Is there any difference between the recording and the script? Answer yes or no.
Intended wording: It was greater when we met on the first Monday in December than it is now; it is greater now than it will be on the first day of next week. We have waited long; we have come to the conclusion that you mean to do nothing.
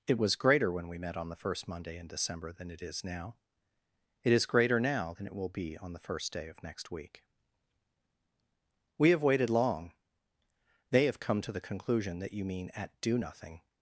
yes